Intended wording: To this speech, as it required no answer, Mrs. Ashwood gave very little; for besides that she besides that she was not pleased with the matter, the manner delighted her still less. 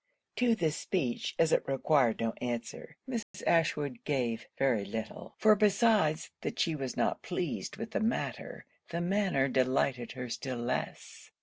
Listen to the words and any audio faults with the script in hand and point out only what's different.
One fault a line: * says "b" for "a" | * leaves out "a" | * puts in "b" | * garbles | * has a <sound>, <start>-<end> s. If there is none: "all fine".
* has a dropout, 3.2-3.3 s
* leaves out "besides that she"